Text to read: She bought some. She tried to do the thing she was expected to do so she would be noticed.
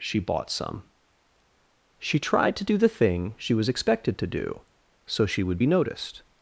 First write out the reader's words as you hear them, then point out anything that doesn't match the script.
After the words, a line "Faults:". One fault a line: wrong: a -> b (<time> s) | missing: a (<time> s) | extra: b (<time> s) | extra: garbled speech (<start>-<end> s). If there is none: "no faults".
She bought some. She tried to do the thing she was expected to do so she would be noticed.
Faults:
no faults